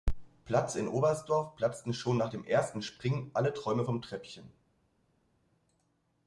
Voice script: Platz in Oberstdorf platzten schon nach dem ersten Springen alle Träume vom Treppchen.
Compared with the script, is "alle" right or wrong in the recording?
right